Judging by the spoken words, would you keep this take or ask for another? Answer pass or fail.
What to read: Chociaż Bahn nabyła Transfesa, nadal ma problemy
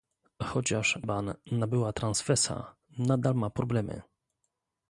pass